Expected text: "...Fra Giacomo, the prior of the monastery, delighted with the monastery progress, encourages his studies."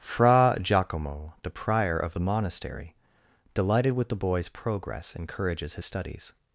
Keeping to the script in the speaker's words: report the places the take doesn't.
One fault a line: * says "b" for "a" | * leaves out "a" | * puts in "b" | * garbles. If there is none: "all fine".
* says "boy's" for "monastery"